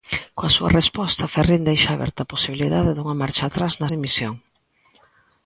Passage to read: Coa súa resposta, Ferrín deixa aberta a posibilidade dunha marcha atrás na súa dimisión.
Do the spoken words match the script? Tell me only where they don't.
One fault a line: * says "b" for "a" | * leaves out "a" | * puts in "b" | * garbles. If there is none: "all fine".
* leaves out "súa"